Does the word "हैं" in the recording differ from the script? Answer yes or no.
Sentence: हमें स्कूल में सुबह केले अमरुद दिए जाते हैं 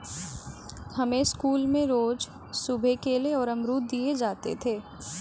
yes